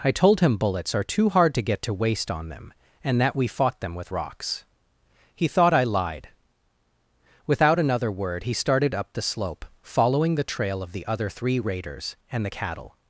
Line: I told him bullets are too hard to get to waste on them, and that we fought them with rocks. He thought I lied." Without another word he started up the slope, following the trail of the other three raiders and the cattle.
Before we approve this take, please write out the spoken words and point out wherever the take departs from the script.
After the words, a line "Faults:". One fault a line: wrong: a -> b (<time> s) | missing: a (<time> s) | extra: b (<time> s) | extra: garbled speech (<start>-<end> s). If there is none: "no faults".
I told him bullets are too hard to get to waste on them, and that we fought them with rocks. He thought I lied." Without another word he started up the slope, following the trail of the other three raiders and the cattle.
Faults:
no faults